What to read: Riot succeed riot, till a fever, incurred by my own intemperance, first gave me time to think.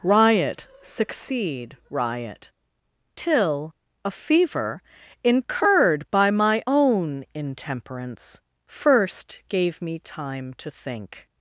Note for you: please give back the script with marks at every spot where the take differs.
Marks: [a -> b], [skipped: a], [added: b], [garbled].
Riot succeed riot, till a fever, incurred by my own intemperance, first gave me time to think.